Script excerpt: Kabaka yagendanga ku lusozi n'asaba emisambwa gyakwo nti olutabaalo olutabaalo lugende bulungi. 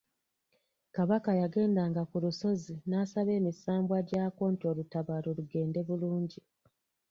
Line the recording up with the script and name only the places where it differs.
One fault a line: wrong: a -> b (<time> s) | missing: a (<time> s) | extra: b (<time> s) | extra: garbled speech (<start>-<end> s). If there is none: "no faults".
missing: olutabaalo (5.3 s)